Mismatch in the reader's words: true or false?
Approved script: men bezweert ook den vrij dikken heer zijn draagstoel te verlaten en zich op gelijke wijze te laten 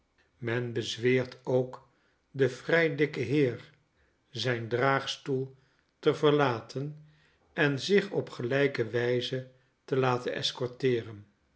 false